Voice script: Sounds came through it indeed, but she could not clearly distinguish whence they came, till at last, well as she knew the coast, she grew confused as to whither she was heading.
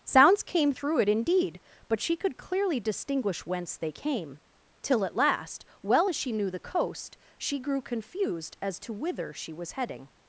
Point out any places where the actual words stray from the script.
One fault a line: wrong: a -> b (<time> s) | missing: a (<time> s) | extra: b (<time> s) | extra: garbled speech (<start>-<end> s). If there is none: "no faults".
missing: not (2.4 s)